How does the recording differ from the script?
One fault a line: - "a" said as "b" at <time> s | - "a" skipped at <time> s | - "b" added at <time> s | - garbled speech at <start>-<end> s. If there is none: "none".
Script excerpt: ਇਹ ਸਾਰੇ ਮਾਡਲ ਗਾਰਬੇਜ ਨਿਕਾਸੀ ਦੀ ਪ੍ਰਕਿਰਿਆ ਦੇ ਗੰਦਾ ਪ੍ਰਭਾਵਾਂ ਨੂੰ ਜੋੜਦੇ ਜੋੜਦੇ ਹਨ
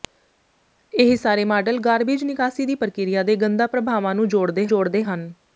none